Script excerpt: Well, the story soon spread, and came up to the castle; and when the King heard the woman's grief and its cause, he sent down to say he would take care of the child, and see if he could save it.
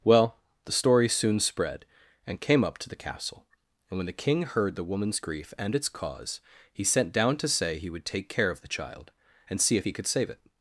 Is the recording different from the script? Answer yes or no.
no